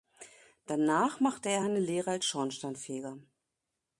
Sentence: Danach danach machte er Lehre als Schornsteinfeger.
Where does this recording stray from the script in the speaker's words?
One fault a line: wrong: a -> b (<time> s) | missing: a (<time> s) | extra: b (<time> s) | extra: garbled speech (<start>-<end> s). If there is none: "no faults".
missing: danach (1.2 s)
extra: eine (1.6 s)